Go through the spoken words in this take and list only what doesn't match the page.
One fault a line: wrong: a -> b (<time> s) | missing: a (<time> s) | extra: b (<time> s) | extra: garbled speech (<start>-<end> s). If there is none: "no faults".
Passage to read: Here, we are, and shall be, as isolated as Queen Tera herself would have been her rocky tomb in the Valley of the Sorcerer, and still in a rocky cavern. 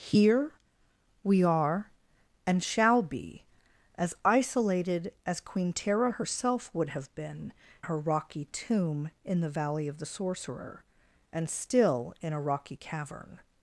no faults